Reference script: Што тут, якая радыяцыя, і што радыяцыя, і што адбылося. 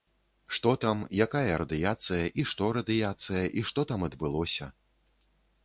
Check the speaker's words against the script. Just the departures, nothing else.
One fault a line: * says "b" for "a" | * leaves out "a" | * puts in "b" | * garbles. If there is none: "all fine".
* says "там" for "тут"
* puts in "там"